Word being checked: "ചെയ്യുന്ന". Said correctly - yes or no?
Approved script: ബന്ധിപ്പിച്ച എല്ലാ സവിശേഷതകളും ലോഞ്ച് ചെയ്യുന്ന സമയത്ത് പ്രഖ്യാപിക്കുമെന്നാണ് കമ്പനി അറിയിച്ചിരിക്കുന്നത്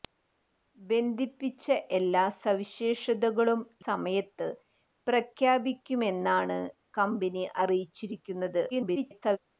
no